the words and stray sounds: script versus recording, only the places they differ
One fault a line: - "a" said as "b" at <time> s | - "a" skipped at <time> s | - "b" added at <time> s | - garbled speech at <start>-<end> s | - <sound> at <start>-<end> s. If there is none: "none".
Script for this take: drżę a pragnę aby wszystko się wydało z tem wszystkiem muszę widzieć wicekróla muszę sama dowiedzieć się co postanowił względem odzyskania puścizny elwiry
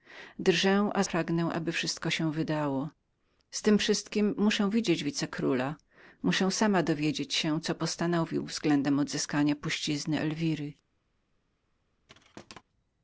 - thud at 12.1-12.6 s